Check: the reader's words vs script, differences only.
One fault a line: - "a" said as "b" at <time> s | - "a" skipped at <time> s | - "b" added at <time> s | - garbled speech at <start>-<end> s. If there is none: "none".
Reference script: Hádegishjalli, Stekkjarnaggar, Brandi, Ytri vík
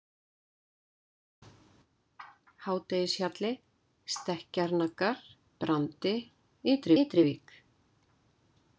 - "Ytri" added at 7.0 s